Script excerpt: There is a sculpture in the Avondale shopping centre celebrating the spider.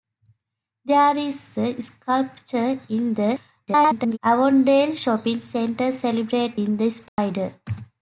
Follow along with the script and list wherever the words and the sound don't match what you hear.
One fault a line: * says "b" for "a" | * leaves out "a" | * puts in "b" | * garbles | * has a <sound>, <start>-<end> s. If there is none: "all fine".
* garbles
* has a dropout, 7.1-7.2 s